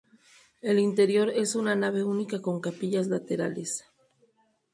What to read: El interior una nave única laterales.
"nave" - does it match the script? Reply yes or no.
yes